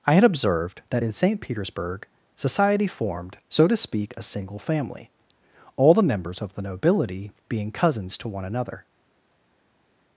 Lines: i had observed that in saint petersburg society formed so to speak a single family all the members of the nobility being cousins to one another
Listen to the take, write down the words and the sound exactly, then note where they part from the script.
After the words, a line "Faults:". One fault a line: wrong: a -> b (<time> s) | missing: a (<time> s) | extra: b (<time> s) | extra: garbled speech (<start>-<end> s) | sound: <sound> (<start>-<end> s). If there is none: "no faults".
i had observed that in saint petersburg society formed so to speak a single family all the members of the nobility being cousins to one another
Faults:
no faults